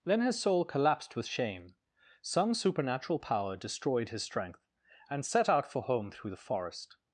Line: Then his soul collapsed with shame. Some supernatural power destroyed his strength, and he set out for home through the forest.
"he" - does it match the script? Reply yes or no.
no